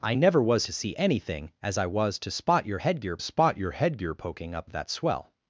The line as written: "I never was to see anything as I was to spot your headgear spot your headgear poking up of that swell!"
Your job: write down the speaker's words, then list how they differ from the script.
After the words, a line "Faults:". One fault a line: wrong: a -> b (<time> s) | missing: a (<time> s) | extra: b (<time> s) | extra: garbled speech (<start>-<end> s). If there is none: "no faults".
"I never was to see anything as I was to spot your headgear spot your headgear poking up of that swell!"
Faults:
no faults